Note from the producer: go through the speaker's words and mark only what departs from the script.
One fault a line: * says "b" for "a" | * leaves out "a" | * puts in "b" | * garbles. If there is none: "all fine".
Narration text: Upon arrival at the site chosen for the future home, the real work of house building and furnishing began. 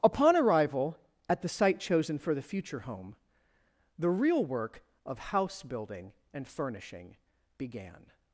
all fine